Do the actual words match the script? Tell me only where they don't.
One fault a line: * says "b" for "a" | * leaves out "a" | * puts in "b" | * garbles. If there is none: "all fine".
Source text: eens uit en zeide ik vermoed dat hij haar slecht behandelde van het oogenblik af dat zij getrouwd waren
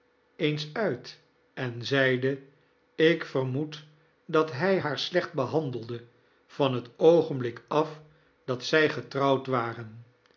all fine